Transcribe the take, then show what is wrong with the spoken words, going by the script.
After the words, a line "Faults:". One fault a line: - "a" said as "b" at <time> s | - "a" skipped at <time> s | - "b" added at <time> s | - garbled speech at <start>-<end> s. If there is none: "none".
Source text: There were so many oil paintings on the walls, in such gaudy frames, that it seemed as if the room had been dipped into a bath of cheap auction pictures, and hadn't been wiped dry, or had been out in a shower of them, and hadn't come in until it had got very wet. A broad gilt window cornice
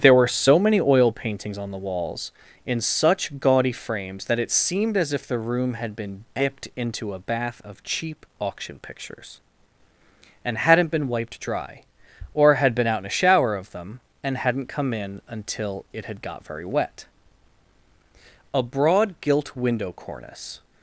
There were so many oil paintings on the walls, in such gaudy frames, that it seemed as if the room had been dipped into a bath of cheap auction pictures, and hadn't been wiped dry, or had been out in a shower of them, and hadn't come in until it had got very wet. A broad gilt window cornice
Faults:
none